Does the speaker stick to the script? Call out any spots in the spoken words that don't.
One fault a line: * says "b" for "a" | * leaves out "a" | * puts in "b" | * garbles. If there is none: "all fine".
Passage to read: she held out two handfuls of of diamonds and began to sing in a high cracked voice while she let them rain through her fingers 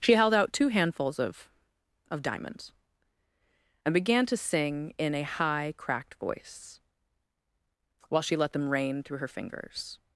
all fine